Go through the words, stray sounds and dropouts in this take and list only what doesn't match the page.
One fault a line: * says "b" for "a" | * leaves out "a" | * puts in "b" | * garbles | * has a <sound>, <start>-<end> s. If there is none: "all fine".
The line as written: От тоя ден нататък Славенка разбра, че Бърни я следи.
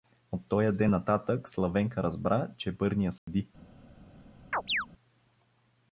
* has a dropout, 3.2-3.3 s
* has a chirp, 4.5-4.9 s